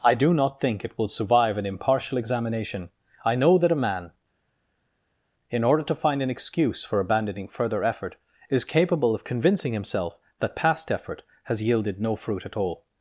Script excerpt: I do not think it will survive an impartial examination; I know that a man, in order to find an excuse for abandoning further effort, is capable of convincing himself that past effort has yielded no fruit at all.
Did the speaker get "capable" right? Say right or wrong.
right